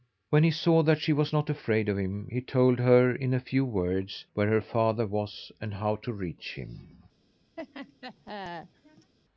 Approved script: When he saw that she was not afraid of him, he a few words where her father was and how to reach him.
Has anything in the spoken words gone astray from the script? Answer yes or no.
yes